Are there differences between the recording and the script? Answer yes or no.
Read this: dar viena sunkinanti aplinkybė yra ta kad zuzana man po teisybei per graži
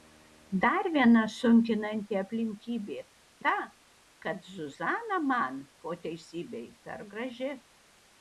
yes